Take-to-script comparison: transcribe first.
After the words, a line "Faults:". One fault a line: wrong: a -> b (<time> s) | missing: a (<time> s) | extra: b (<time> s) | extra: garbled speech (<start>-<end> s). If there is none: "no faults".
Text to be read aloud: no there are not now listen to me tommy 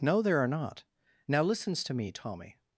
no there are not now listens to me tommy
Faults:
wrong: listen -> listens (1.4 s)